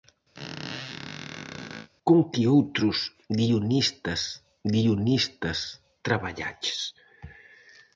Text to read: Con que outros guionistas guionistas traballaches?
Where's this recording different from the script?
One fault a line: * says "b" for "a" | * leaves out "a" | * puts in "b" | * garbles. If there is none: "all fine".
all fine